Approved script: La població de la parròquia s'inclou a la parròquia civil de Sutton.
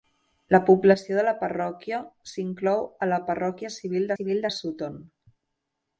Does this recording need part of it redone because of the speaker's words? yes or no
yes